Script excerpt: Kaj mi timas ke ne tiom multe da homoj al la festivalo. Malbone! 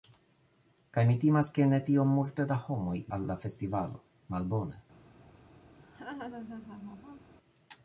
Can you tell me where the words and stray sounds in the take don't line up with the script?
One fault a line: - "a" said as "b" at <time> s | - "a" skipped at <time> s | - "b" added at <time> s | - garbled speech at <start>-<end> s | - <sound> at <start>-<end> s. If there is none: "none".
- laugh at 5.8-7.3 s